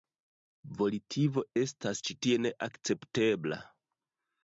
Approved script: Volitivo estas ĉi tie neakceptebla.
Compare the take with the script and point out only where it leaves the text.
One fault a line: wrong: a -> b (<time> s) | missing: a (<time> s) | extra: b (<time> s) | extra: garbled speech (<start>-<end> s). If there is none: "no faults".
no faults